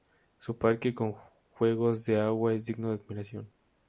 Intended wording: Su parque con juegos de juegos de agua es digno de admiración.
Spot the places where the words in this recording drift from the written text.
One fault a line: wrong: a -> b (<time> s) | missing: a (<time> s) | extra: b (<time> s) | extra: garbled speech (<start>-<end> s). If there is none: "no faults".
missing: juegos de (2.2 s)